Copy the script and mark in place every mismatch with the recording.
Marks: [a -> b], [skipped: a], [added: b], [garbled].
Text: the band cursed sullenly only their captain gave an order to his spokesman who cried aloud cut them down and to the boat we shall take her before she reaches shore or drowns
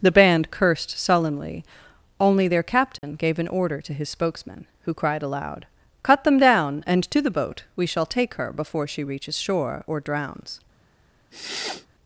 the band cursed sullenly only their captain gave an order to his spokesman who cried aloud cut them down and to the boat we shall take her before she reaches shore or drowns